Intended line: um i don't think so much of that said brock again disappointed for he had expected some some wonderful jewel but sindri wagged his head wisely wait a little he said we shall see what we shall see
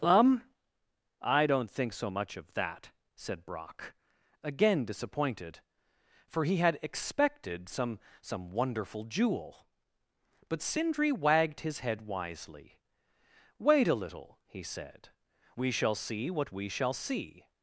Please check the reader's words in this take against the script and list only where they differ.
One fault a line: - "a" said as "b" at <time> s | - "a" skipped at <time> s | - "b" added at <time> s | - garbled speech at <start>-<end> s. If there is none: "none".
none